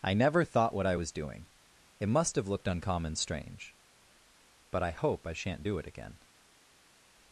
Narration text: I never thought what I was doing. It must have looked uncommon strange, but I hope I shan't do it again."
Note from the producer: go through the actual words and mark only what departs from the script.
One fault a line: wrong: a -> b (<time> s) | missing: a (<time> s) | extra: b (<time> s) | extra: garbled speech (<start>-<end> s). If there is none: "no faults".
no faults